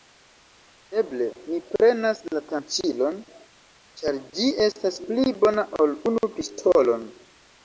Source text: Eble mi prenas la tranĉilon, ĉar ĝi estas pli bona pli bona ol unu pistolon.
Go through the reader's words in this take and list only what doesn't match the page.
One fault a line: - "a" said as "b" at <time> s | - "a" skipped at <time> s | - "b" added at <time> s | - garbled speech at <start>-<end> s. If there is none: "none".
- "pli bona" skipped at 5.7 s